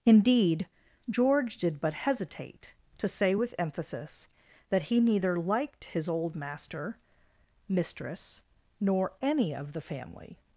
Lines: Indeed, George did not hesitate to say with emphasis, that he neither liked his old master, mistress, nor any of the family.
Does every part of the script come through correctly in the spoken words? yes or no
no